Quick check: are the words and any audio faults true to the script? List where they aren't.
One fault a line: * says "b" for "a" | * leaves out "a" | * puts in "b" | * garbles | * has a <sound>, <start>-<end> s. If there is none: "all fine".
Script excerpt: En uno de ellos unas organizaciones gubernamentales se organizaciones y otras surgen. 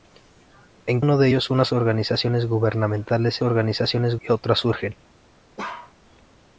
* has a bark, 5.6-5.9 s